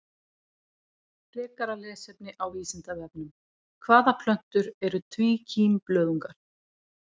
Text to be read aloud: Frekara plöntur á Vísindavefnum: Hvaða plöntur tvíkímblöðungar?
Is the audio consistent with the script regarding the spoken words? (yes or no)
no